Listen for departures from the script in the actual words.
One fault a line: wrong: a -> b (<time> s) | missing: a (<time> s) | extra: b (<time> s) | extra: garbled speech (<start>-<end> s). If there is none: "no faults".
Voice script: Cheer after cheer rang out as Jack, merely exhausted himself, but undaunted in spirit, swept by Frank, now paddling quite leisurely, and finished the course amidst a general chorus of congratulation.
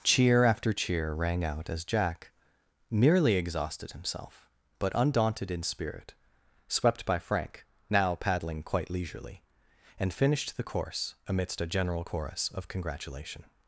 no faults